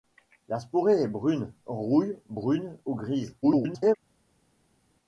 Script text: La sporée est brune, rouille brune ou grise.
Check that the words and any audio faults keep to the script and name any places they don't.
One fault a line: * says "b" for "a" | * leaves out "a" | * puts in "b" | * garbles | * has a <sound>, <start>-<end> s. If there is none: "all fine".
* garbles